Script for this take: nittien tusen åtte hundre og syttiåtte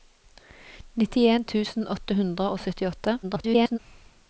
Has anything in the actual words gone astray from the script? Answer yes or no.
yes